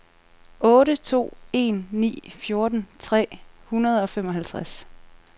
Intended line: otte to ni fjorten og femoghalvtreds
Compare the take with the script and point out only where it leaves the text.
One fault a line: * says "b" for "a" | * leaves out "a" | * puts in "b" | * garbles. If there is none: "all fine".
* puts in "en"
* puts in "tre hundrede"